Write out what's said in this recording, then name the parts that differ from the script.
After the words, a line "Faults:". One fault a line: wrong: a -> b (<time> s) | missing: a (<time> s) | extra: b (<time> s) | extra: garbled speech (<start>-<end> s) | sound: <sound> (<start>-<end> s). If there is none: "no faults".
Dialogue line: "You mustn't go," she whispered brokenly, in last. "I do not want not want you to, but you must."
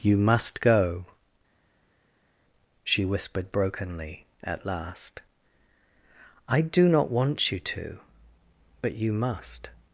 "You must go," she whispered brokenly, at last. "I do not want you to, but you must."
Faults:
wrong: mustn't -> must (0.2 s)
wrong: in -> at (4.4 s)
missing: not want (7.5 s)